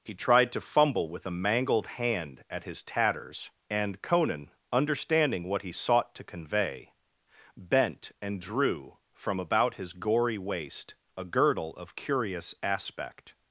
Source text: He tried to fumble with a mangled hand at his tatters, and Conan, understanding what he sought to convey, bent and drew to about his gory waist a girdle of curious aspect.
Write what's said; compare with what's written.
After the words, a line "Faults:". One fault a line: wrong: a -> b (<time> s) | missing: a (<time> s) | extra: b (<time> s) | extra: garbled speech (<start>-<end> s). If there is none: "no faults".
He tried to fumble with a mangled hand at his tatters, and Conan, understanding what he sought to convey, bent and drew from about his gory waist a girdle of curious aspect.
Faults:
wrong: to -> from (9.1 s)